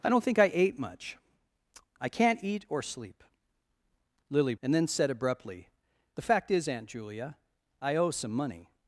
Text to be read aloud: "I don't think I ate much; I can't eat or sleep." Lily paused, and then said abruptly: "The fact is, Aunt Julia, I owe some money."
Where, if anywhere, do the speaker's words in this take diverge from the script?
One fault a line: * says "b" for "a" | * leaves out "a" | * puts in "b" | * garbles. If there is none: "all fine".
* leaves out "paused"